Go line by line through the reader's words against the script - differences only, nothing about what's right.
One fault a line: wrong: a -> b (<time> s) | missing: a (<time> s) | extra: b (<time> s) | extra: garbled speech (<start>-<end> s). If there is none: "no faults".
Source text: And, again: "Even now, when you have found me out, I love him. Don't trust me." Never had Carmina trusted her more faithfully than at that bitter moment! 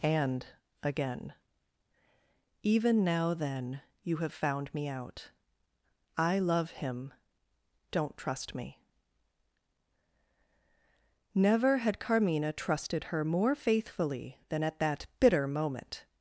wrong: when -> then (3.3 s)